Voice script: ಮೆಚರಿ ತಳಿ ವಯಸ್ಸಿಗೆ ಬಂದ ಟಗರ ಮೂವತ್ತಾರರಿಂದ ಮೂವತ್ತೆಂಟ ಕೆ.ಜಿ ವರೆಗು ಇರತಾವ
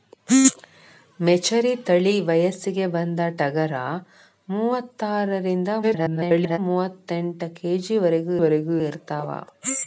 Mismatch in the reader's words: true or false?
true